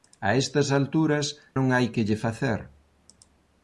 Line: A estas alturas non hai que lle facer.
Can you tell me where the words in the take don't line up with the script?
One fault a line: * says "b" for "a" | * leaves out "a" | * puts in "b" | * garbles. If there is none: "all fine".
all fine